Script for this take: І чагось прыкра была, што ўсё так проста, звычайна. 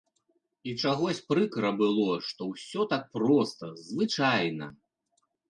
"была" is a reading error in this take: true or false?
true